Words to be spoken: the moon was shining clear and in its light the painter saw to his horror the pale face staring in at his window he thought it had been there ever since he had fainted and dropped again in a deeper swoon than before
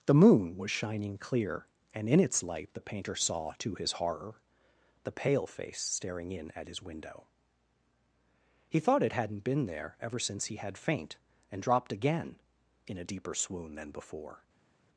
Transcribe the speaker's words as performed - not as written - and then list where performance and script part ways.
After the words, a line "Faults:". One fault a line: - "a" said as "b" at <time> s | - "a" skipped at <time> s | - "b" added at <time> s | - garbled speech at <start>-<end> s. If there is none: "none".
the moon was shining clear and in its light the painter saw to his horror the pale face staring in at his window he thought it hadn't been there ever since he had faint and dropped again in a deeper swoon than before
Faults:
- "had" said as "hadn't" at 9.1 s
- "fainted" said as "faint" at 10.8 s